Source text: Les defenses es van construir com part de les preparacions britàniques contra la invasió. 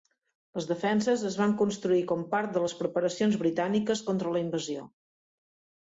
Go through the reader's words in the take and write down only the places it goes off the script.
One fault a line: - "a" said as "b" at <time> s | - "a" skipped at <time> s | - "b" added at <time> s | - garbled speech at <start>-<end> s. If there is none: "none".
none